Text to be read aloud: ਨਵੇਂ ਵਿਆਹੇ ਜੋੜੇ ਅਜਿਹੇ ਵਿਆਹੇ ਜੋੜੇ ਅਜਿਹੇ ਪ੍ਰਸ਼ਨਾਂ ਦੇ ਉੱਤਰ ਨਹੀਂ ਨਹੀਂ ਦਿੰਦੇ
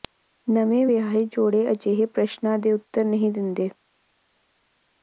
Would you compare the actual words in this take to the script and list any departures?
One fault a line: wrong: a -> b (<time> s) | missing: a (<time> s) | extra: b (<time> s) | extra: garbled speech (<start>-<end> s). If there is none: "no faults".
missing: ਵਿਆਹੇ ਜੋੜੇ ਅਜਿਹੇ (2.1 s)
missing: ਨਹੀਂ (3.3 s)